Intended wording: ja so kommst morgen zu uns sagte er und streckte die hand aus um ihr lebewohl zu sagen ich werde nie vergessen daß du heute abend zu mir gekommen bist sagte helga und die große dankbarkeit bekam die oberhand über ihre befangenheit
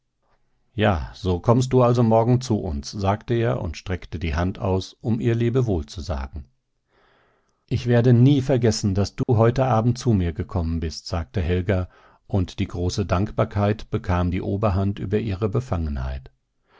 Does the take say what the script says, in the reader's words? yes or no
no